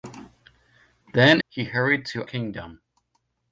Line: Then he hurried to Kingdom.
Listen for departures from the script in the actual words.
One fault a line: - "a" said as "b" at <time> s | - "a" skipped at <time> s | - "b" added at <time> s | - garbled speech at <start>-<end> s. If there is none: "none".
none